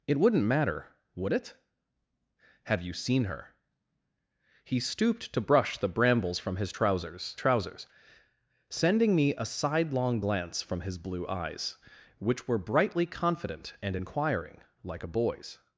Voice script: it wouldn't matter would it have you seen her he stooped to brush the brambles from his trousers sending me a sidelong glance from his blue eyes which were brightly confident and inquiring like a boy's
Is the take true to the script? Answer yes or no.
no